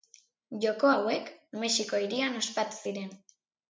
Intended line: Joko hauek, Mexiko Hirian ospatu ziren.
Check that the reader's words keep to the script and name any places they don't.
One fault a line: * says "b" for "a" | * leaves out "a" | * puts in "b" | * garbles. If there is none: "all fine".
all fine